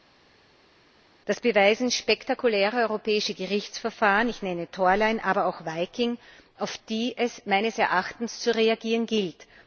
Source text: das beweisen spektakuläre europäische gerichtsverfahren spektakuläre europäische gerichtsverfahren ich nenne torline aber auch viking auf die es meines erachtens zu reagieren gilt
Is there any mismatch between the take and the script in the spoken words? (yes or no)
yes